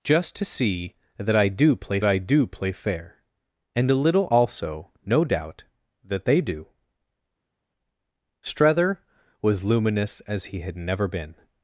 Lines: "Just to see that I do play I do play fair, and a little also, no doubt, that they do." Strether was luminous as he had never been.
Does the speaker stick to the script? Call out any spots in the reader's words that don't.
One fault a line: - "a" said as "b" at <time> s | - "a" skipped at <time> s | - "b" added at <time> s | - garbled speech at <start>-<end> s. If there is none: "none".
none